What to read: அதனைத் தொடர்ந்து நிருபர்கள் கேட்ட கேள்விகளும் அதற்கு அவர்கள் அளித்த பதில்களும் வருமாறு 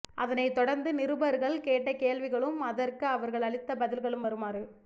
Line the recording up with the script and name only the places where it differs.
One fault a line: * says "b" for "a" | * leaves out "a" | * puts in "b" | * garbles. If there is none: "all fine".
all fine